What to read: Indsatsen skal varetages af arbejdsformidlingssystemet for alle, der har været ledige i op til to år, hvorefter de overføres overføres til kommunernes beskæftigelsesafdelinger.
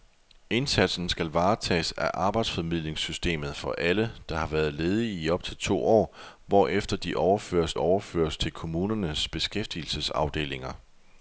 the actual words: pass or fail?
pass